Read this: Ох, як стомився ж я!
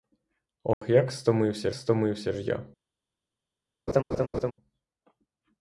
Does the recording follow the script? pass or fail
fail